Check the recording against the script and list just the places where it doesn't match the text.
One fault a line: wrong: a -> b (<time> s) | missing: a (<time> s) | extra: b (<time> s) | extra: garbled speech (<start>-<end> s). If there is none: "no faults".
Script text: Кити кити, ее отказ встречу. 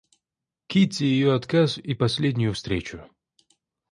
missing: кити (1.0 s)
extra: и последнюю (1.8 s)